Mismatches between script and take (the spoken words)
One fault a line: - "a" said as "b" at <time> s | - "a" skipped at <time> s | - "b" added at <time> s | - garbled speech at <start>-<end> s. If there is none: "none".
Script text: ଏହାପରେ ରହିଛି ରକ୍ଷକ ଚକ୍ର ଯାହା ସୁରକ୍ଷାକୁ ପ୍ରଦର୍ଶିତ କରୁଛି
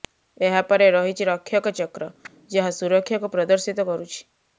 none